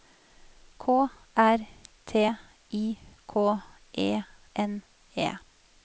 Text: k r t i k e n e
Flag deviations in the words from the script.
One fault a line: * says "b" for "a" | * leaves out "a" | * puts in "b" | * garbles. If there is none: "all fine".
all fine